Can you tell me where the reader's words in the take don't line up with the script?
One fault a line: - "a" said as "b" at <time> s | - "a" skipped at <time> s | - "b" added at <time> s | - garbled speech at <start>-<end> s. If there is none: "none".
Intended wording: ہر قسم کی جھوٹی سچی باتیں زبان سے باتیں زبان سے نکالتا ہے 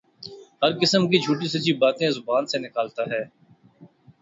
- "باتیں زبان سے" skipped at 2.6 s